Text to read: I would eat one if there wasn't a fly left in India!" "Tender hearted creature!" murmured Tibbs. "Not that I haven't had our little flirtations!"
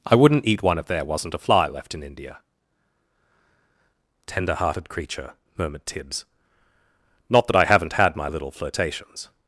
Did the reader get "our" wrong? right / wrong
wrong